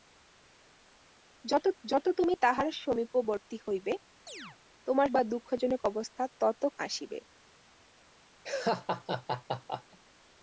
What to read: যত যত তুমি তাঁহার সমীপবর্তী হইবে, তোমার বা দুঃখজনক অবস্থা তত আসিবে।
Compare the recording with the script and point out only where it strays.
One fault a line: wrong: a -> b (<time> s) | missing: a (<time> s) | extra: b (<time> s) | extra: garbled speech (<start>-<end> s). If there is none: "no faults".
no faults